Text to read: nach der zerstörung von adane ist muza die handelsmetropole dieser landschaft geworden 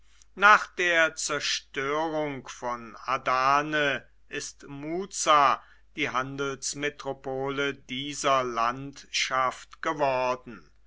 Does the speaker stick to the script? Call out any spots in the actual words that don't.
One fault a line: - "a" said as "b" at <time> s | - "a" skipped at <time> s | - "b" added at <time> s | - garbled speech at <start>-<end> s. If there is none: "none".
none